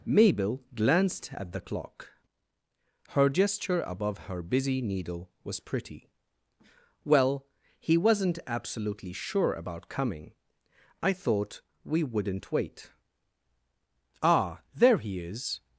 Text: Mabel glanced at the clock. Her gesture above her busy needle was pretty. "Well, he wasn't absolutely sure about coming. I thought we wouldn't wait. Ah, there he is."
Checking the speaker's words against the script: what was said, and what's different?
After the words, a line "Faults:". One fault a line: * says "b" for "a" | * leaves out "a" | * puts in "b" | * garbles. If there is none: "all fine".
Mabel glanced at the clock. Her gesture above her busy needle was pretty. "Well, he wasn't absolutely sure about coming. I thought we wouldn't wait. Ah, there he is."
Faults:
all fine